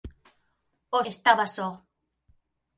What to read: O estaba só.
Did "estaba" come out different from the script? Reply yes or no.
no